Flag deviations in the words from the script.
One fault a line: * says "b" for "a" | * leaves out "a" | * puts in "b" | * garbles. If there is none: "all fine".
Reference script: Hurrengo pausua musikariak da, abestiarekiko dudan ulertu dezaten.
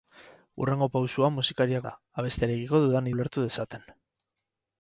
all fine